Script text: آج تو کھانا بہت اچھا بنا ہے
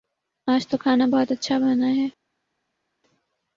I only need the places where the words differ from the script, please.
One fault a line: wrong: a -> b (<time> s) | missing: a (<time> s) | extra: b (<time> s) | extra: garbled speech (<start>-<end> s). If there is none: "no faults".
no faults